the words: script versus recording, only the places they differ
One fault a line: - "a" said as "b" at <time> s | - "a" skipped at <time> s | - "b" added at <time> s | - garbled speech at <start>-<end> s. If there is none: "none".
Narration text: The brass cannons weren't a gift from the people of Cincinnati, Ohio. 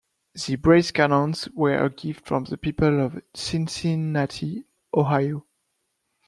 - "weren't" said as "were" at 1.6 s